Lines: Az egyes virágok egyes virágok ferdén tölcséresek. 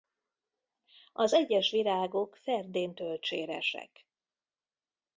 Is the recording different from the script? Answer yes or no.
yes